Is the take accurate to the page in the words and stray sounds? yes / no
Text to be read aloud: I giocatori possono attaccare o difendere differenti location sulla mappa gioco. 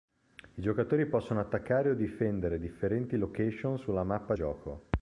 yes